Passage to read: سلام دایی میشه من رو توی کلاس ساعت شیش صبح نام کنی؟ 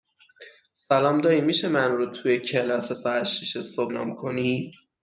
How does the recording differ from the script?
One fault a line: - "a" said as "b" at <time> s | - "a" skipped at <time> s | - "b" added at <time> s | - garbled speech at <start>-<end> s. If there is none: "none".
none